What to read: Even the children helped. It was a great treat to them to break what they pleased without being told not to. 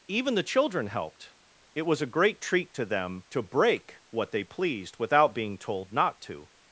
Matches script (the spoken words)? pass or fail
pass